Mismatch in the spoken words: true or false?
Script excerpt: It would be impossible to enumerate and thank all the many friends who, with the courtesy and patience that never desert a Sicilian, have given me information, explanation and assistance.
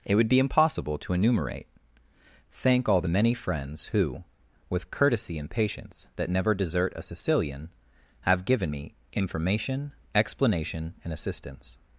true